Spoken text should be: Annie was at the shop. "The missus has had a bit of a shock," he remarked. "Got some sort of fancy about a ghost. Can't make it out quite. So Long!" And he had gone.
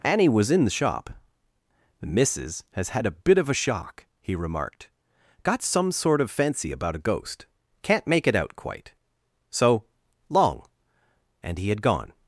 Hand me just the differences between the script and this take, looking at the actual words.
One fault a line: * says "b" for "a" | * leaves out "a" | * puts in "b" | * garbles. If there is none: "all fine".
* says "in" for "at"